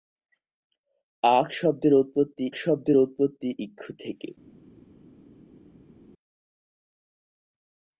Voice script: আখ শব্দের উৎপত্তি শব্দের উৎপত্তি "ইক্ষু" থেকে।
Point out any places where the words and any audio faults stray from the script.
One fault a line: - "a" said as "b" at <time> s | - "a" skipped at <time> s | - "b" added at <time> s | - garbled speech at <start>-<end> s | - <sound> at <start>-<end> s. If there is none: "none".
none